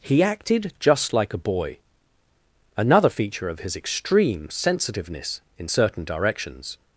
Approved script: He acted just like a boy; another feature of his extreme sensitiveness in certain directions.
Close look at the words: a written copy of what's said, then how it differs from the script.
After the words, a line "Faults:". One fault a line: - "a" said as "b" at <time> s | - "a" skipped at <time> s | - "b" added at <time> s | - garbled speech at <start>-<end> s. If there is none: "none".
He acted just like a boy; another feature of his extreme sensitiveness in certain directions.
Faults:
none